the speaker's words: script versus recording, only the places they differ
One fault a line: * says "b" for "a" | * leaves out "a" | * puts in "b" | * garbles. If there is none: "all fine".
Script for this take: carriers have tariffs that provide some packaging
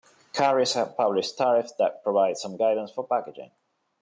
* puts in "published"
* puts in "guidance for"